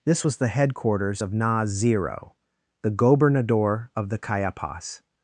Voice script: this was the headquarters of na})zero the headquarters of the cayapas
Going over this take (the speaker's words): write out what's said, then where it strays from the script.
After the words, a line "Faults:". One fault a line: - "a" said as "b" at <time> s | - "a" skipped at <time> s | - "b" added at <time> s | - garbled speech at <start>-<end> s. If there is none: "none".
this was the headquarters of na})zero the gobernador of the cayapas
Faults:
- "headquarters" said as "gobernador" at 2.9 s